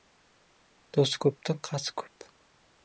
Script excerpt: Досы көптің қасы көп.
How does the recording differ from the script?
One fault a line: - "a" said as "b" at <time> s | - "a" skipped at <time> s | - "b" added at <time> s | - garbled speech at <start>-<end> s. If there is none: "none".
none